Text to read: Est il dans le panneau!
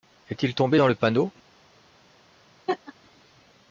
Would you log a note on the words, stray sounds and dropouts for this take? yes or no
yes